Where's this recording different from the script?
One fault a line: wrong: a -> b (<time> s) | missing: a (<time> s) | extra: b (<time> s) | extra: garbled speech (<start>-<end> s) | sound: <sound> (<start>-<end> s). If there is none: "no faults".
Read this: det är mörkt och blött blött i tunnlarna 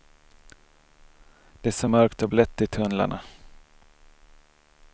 extra: så (1.7 s)
missing: blött (2.6 s)